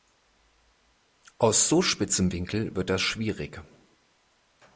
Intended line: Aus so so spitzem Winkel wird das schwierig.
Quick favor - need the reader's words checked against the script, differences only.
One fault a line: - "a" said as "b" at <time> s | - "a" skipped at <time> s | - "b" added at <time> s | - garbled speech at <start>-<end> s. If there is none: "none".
- "so" skipped at 1.8 s